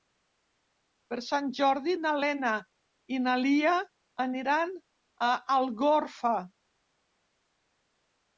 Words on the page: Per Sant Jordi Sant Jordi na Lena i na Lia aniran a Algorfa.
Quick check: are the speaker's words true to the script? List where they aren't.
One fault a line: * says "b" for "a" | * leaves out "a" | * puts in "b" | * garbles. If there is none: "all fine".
* leaves out "Sant Jordi"